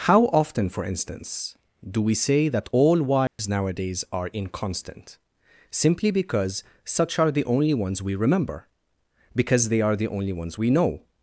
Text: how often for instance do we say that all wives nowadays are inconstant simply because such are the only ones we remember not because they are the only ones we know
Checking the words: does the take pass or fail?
fail